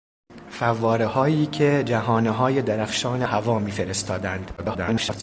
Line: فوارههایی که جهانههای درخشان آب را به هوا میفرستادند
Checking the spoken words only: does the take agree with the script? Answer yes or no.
no